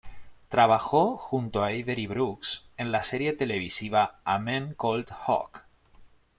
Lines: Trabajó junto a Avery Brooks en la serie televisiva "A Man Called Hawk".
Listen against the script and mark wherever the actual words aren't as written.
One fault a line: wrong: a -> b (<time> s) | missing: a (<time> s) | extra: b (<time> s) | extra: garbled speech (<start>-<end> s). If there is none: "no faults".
no faults